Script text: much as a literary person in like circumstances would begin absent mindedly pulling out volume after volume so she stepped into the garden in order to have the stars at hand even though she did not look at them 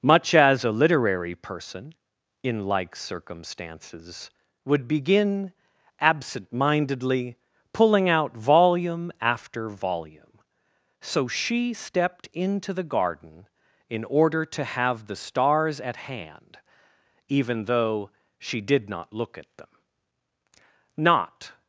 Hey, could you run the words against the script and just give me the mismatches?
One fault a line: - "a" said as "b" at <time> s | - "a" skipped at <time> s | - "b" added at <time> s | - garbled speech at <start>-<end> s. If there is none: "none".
- "not" added at 21.0 s